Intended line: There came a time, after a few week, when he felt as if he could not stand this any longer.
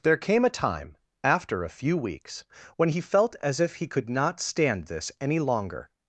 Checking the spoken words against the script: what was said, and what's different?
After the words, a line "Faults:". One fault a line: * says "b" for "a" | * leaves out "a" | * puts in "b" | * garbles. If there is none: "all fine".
There came a time, after a few weeks, when he felt as if he could not stand this any longer.
Faults:
* says "weeks" for "week"